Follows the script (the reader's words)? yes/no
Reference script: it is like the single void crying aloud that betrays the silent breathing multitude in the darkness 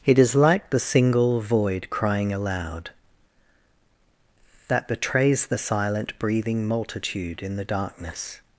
yes